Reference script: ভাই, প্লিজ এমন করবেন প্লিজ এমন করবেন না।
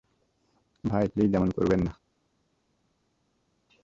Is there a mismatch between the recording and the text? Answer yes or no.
yes